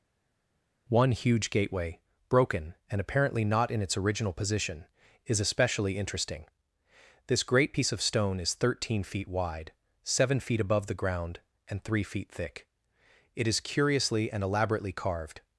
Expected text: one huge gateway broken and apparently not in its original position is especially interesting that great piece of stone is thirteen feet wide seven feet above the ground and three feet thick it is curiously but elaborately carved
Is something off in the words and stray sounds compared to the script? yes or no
yes